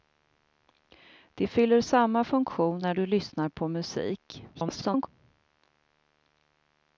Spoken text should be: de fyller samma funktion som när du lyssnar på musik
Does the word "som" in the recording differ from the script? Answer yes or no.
yes